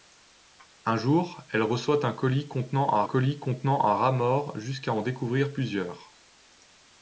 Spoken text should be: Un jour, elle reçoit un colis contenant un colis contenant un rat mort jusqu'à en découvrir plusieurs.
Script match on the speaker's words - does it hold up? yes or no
yes